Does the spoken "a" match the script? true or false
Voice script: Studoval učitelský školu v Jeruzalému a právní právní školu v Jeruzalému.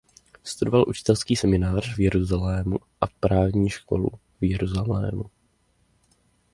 true